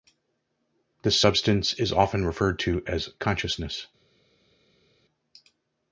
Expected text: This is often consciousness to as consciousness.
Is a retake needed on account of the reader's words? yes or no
yes